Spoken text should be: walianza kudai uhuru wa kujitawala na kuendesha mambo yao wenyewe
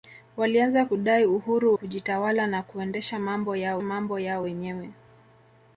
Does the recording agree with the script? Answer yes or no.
no